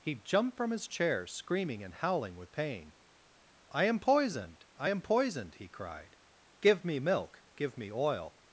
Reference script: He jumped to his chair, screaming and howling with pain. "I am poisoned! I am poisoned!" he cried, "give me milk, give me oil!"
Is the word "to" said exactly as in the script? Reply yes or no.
no